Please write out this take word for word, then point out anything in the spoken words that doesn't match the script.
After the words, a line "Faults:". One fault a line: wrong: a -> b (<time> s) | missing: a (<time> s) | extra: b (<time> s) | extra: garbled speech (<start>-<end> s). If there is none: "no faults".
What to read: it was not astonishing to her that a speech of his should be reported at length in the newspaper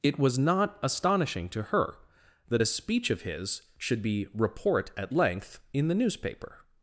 it was not astonishing to her that a speech of his should be report at length in the newspaper
Faults:
wrong: reported -> report (4.3 s)